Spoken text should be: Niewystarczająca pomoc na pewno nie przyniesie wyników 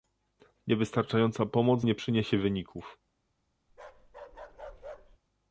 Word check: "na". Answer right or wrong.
wrong